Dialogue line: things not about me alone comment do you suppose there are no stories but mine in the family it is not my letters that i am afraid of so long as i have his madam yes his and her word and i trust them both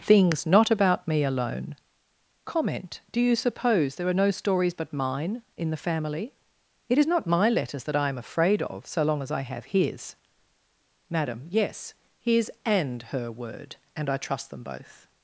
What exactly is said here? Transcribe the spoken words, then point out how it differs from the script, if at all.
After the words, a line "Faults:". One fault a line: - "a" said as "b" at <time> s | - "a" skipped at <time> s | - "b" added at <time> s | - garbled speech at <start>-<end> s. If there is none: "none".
things not about me alone comment do you suppose there are no stories but mine in the family it is not my letters that i am afraid of so long as i have his madam yes his and her word and i trust them both
Faults:
none